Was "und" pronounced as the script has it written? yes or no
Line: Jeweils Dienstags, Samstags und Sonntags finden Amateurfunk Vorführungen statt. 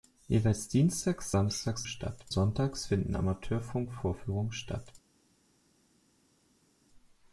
no